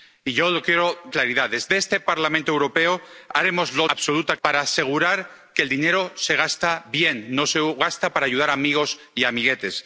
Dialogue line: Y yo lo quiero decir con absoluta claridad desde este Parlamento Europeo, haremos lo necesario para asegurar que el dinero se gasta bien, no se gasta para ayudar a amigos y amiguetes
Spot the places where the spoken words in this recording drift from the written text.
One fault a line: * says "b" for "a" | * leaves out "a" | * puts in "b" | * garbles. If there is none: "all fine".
* leaves out "decir con absoluta"
* says "absoluta" for "necesario"